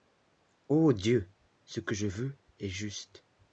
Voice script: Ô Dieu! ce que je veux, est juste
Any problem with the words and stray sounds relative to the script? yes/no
no